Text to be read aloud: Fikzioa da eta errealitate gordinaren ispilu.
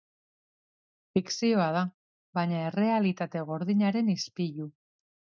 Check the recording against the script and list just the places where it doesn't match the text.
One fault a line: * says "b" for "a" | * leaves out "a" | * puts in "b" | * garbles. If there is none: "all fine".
* says "baina" for "eta"